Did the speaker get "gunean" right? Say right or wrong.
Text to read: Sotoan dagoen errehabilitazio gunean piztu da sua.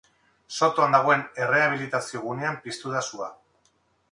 right